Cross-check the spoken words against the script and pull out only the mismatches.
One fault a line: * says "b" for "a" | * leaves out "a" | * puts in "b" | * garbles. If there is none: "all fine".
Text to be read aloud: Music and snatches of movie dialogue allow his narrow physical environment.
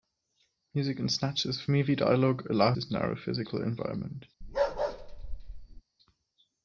all fine